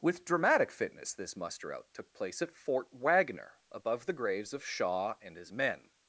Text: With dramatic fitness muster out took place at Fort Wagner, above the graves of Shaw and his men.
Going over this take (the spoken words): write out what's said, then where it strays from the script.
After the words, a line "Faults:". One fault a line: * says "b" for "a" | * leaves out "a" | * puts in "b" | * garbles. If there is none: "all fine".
With dramatic fitness this muster out took place at Fort Wagner, above the graves of Shaw and his men.
Faults:
* puts in "this"